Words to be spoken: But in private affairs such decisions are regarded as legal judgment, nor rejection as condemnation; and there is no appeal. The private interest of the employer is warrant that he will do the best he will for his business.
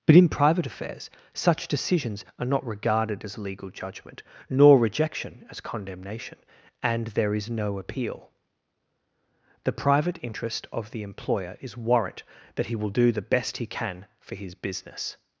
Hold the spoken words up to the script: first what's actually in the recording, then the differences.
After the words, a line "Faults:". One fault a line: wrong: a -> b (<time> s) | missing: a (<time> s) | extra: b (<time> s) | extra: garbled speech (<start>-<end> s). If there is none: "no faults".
But in private affairs such decisions are not regarded as legal judgment, nor rejection as condemnation; and there is no appeal. The private interest of the employer is warrant that he will do the best he can for his business.
Faults:
extra: not (2.5 s)
wrong: will -> can (13.7 s)